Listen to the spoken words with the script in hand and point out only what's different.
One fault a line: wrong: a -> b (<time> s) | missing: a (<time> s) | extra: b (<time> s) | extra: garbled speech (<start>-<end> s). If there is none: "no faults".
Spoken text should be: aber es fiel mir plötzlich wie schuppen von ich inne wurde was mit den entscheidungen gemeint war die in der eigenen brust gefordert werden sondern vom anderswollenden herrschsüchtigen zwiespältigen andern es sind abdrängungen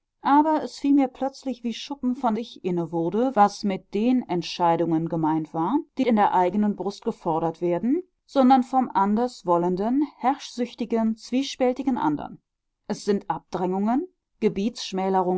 no faults